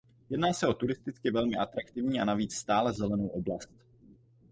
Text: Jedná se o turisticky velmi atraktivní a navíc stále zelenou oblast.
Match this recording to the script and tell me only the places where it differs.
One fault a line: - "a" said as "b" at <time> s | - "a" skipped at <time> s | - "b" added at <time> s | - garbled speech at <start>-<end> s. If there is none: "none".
none